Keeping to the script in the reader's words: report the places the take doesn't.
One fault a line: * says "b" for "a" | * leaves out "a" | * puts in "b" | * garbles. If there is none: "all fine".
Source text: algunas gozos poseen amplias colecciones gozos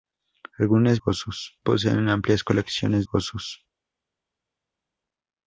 all fine